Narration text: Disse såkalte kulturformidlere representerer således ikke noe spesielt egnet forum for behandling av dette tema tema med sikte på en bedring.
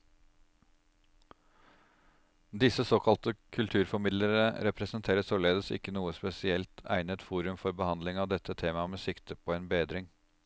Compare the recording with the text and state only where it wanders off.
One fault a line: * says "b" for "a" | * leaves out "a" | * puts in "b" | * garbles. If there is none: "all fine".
* leaves out "tema"